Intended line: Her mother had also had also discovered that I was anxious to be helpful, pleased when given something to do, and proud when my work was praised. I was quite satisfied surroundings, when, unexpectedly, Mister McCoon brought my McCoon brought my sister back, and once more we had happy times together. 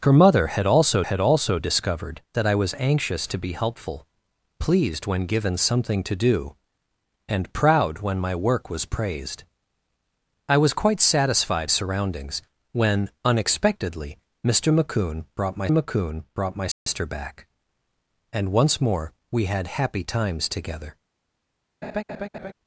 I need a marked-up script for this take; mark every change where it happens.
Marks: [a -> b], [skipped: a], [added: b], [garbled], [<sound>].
Her mother had also had also discovered that I was anxious to be helpful, pleased when given something to do, and proud when my work was praised. I was quite satisfied surroundings, when, unexpectedly, Mister McCoon brought my McCoon brought my sister [dropout] back, and once more we had happy times together. [laugh]